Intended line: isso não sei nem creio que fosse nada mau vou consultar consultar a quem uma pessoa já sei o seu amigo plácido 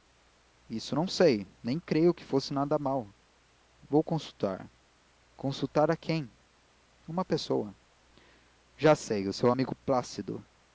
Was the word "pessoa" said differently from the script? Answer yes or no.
no